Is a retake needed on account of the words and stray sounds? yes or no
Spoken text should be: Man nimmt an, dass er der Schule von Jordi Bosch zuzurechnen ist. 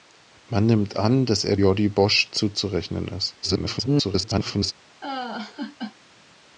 yes